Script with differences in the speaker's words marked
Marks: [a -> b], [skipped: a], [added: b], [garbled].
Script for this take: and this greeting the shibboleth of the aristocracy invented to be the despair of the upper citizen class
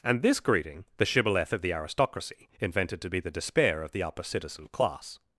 and this greeting the shibboleth of the aristocracy invented to be the despair of the upper citizen class